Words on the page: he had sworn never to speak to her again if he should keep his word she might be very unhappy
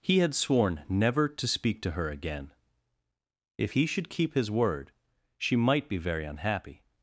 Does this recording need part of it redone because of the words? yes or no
no